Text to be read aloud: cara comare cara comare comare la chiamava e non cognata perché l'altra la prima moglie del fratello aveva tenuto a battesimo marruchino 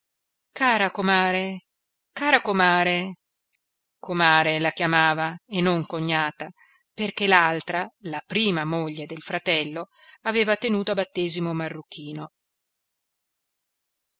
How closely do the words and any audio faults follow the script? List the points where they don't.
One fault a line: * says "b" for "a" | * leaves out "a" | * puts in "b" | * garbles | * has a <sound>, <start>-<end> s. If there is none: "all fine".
all fine